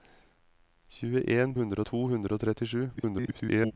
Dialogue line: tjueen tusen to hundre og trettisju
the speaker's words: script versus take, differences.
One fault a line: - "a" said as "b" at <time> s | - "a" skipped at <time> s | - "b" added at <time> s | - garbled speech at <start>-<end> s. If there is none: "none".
- "tusen" said as "hundre" at 1.5 s
- garbled speech at 3.0-3.7 s